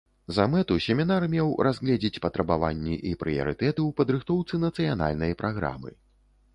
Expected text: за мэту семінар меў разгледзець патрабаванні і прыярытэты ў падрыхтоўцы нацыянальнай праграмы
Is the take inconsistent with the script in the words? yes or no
no